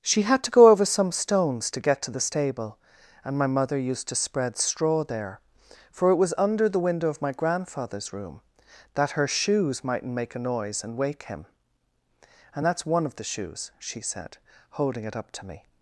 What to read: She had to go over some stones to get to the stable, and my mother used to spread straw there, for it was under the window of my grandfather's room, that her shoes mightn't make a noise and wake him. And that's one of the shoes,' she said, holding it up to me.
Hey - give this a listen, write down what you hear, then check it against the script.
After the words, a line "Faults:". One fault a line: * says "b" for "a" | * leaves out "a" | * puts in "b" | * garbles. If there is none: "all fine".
She had to go over some stones to get to the stable, and my mother used to spread straw there, for it was under the window of my grandfather's room, that her shoes mightn't make a noise and wake him. And that's one of the shoes,' she said, holding it up to me.
Faults:
all fine